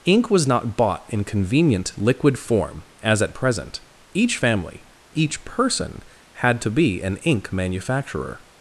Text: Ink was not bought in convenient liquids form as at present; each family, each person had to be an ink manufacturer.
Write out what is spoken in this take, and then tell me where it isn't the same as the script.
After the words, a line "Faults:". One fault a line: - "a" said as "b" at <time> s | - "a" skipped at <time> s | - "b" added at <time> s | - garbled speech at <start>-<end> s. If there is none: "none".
Ink was not bought in convenient liquid form as at present; each family, each person had to be an ink manufacturer.
Faults:
- "liquids" said as "liquid" at 2.0 s